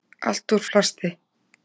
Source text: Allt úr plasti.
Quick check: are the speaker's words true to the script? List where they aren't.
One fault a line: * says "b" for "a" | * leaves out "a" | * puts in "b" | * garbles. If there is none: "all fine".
all fine